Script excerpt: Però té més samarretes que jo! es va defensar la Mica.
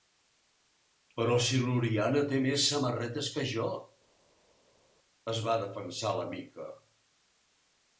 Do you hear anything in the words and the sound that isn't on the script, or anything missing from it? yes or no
yes